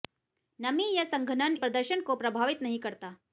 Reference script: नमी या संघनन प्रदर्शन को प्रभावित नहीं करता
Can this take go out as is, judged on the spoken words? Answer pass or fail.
pass